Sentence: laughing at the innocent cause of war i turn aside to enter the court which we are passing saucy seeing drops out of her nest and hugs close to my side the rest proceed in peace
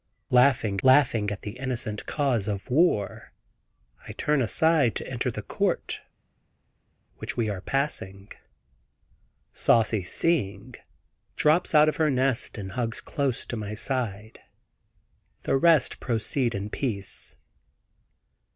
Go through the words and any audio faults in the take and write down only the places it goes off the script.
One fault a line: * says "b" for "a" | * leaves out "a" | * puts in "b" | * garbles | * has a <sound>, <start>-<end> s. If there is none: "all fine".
* puts in "laughing"